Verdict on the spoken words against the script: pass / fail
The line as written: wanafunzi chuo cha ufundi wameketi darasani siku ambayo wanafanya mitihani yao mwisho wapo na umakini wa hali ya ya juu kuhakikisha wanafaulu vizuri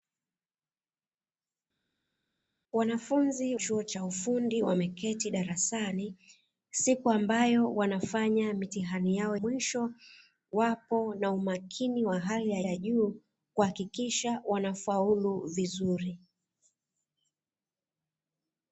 pass